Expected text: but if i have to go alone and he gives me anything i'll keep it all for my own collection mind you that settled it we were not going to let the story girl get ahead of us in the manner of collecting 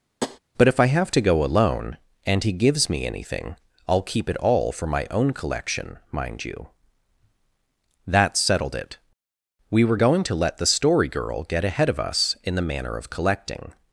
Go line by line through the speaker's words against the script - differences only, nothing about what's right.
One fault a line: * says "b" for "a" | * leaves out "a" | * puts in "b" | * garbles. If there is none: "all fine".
* leaves out "not"